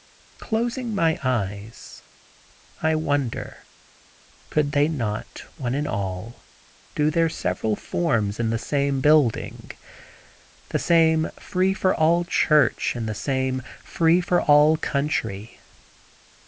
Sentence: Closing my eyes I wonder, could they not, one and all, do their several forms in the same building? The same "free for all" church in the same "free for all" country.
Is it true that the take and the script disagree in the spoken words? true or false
false